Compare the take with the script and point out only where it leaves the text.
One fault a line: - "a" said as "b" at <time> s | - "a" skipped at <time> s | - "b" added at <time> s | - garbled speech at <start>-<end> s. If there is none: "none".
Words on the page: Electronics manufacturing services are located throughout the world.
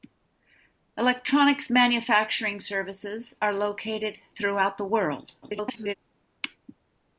- garbled speech at 5.4-5.9 s